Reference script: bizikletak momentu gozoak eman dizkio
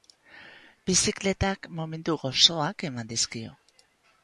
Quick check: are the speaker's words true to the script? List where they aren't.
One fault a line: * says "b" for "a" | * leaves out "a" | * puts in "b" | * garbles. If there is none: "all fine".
all fine